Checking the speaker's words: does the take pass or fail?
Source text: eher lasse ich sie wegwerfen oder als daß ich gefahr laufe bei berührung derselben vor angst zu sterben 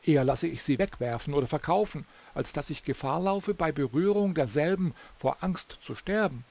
fail